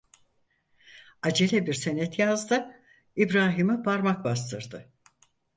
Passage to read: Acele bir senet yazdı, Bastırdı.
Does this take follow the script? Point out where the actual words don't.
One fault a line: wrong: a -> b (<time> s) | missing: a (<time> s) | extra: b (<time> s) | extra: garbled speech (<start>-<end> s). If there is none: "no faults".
extra: İbrahim'e parmak (3.2 s)